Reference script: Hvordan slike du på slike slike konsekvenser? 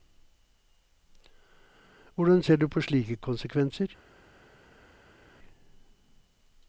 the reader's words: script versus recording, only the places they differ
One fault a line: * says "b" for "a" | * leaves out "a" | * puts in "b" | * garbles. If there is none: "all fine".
* says "ser" for "slike"
* leaves out "slike"